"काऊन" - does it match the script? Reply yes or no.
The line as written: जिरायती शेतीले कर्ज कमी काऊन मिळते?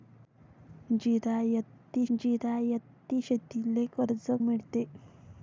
no